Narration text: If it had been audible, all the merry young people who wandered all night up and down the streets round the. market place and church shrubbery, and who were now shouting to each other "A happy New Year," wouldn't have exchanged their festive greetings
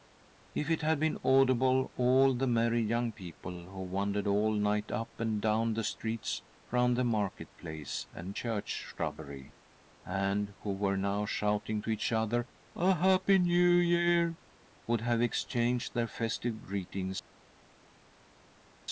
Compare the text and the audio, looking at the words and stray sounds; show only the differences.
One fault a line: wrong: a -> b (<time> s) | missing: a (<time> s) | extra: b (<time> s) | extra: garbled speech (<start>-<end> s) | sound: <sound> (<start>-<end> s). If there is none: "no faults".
wrong: wouldn't -> would (14.9 s)